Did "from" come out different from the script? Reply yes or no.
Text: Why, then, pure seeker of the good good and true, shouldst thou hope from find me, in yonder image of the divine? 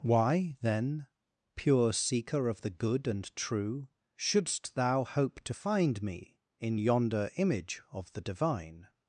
yes